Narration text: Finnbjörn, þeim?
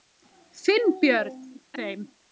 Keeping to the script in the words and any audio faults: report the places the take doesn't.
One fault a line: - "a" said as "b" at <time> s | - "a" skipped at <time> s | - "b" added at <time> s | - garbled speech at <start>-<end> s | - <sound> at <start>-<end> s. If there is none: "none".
none